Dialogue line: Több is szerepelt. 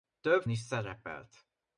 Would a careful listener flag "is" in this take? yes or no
no